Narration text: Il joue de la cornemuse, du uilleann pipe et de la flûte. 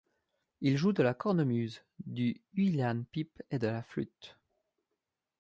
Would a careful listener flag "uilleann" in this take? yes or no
no